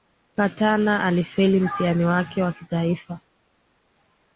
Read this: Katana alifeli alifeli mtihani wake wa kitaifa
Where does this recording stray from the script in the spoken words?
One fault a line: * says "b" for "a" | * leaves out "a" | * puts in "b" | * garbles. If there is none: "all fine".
* leaves out "alifeli"